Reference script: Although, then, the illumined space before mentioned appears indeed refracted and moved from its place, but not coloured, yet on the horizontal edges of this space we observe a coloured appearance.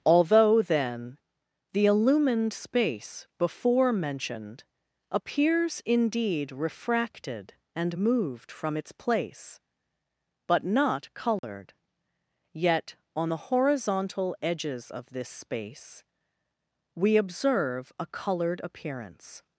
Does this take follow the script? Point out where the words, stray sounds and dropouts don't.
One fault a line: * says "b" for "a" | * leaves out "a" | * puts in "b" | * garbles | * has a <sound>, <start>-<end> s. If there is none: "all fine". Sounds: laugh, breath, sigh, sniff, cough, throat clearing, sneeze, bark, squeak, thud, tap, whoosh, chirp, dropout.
* has a dropout, 11.4-11.4 s